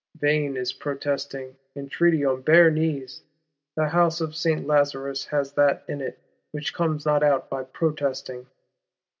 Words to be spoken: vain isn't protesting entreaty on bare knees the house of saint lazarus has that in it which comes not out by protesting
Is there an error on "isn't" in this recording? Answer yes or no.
yes